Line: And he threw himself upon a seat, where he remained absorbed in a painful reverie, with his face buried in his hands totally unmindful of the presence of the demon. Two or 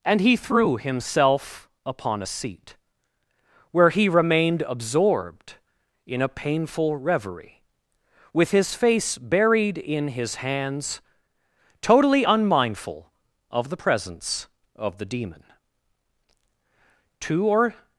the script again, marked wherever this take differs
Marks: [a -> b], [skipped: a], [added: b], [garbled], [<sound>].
And he threw himself upon a seat, where he remained absorbed in a painful reverie, with his face buried in his hands totally unmindful of the presence of the demon. Two or